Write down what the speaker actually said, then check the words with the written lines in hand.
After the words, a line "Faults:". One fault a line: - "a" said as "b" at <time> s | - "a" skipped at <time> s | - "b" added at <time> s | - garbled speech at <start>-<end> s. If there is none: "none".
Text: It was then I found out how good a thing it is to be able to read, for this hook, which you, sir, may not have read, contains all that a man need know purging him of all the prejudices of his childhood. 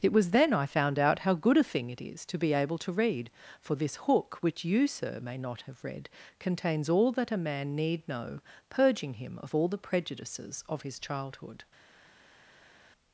It was then I found out how good a thing it is to be able to read, for this hook, which you, sir, may not have read, contains all that a man need know purging him of all the prejudices of his childhood.
Faults:
none